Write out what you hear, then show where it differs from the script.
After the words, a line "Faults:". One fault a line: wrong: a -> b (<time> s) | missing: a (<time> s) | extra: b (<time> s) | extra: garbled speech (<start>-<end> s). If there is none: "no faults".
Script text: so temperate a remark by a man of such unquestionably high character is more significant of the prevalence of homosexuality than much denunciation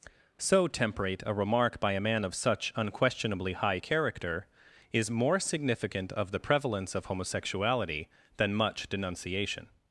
so temperate a remark by a man of such unquestionably high character is more significant of the prevalence of homosexuality than much denunciation
Faults:
no faults